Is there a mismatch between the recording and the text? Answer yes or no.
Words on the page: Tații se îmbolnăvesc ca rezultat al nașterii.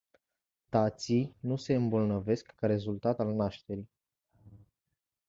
yes